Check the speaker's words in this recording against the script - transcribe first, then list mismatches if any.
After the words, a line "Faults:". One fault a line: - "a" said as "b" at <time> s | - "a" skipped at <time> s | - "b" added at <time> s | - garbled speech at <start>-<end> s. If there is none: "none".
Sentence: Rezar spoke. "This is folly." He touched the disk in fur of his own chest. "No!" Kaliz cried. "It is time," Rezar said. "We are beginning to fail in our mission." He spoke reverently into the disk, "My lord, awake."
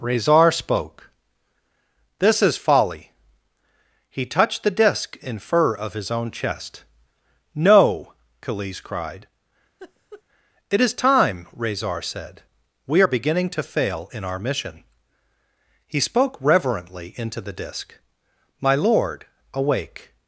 Rezar spoke. "This is folly." He touched the disk in fur of his own chest. "No!" Kaliz cried. "It is time," Rezar said. "We are beginning to fail in our mission." He spoke reverently into the disk, "My lord, awake."
Faults:
none